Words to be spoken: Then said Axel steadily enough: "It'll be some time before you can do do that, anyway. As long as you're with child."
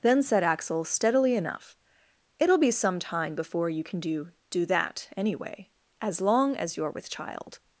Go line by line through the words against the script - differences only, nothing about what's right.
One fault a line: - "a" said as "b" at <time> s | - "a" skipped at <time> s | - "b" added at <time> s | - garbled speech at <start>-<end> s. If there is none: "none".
none